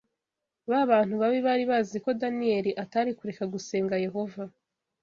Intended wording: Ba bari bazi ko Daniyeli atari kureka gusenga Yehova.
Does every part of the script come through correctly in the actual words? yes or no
no